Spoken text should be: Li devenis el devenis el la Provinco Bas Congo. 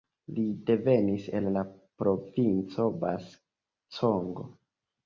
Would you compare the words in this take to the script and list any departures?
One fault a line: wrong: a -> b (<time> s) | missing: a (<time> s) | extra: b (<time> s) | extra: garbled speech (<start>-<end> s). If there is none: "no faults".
missing: devenis el (1.5 s)